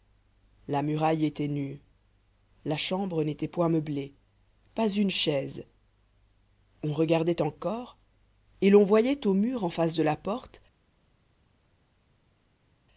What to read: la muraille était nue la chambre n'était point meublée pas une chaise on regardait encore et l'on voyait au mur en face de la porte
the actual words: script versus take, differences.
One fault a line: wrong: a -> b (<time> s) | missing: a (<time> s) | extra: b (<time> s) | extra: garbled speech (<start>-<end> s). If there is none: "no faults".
no faults